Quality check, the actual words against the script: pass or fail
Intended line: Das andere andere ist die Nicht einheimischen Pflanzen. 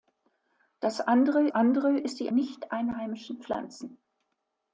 pass